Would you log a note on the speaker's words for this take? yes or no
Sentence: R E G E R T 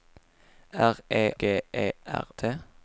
no